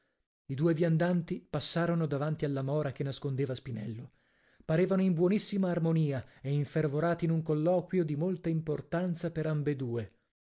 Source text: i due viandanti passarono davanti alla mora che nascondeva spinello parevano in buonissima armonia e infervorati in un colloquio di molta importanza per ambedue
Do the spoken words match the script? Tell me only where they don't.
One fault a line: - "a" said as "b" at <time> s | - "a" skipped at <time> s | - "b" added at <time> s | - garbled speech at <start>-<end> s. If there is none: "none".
none